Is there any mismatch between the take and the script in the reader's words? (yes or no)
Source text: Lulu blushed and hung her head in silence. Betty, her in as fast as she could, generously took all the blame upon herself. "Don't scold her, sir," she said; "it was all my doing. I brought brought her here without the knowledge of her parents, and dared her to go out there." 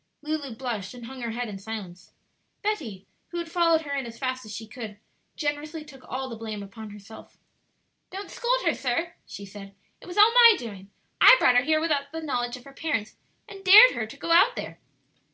yes